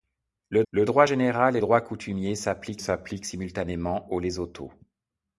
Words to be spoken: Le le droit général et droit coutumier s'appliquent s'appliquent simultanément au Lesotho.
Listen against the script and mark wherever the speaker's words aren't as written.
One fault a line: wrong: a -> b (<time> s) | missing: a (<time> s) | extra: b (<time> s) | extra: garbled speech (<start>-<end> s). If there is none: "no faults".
no faults